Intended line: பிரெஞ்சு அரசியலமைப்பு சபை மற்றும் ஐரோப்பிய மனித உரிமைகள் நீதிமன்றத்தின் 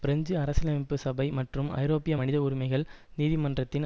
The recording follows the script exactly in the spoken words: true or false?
true